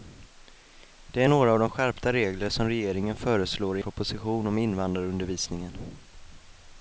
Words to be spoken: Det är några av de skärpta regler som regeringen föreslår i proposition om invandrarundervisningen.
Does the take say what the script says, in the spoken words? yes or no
yes